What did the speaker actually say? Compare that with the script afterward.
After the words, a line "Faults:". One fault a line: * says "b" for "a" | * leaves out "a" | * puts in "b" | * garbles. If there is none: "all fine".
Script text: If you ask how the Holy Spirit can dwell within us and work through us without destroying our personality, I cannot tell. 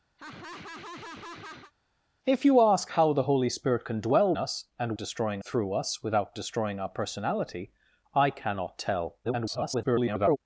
If you ask how the Holy Spirit can dwell us and destroying through us without destroying our personality, I cannot tell. [garbled]
Faults:
* leaves out "within"
* says "destroying" for "work"
* garbles